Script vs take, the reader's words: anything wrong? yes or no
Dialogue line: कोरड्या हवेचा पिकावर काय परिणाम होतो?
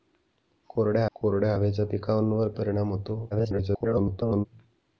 yes